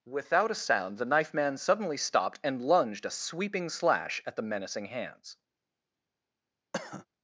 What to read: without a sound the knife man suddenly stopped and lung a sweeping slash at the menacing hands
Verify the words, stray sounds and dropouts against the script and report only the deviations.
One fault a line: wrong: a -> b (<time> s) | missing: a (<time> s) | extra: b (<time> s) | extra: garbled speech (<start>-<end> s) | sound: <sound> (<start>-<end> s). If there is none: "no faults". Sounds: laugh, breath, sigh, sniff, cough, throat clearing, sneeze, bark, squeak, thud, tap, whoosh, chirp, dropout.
wrong: lung -> lunged (2.6 s)
sound: cough (6.7-7.1 s)